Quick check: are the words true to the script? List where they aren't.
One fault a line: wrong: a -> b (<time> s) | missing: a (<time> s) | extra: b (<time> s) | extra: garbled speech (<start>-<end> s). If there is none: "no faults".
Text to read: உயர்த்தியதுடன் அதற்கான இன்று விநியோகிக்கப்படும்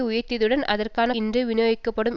no faults